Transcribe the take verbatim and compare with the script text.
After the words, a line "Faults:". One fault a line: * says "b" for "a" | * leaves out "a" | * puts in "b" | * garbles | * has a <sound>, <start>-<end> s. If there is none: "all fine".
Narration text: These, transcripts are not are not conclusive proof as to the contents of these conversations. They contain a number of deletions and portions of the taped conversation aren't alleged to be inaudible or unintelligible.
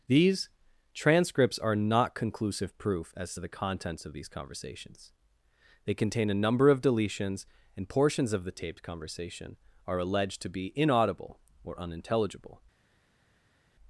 These, transcripts are not conclusive proof as to the contents of these conversations. They contain a number of deletions and portions of the taped conversation are alleged to be inaudible or unintelligible.
Faults:
* leaves out "are not"
* says "are" for "aren't"